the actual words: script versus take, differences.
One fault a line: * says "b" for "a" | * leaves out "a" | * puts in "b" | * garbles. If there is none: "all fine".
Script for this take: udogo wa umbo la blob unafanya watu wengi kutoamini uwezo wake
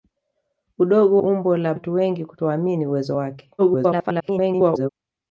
* leaves out "wa"
* leaves out "blob unafanya"
* garbles